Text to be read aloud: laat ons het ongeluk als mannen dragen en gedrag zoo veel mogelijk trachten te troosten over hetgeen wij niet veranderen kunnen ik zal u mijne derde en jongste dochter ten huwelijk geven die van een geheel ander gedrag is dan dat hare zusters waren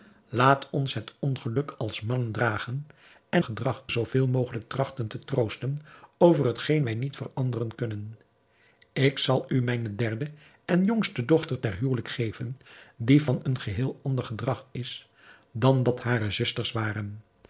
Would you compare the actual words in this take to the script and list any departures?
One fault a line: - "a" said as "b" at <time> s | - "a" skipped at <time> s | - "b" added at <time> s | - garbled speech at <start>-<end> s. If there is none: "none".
none